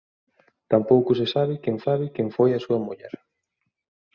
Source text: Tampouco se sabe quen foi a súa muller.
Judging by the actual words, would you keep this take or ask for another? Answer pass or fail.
fail